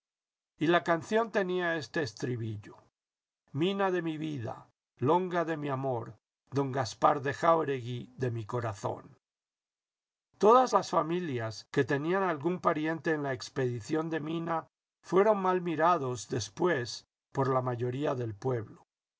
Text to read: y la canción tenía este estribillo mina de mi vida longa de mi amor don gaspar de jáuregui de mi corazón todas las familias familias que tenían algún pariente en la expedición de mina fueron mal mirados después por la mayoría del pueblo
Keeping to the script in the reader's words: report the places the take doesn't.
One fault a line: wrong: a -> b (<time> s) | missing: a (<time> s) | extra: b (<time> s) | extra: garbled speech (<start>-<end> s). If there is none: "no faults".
missing: familias (11.7 s)